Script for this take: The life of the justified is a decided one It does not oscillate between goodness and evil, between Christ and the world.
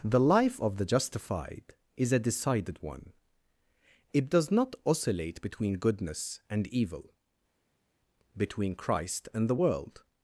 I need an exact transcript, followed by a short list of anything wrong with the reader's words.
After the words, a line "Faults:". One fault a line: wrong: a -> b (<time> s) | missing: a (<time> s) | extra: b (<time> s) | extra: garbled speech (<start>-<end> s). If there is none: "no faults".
The life of the justified is a decided one It does not oscillate between goodness and evil, between Christ and the world.
Faults:
no faults